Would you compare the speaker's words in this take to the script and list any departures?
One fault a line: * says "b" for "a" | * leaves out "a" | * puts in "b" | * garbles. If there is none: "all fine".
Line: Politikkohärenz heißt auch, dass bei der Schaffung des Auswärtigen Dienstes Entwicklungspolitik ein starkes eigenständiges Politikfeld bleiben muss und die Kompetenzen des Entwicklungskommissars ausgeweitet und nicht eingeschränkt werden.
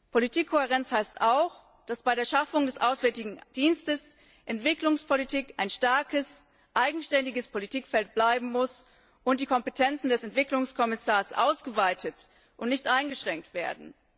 all fine